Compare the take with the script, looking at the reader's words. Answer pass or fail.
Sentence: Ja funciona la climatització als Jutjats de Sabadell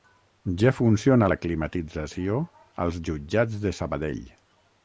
pass